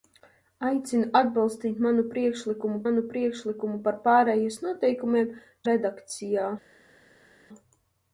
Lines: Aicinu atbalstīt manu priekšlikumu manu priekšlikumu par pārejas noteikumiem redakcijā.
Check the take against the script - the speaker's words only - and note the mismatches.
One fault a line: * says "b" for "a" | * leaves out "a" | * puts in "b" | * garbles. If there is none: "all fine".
all fine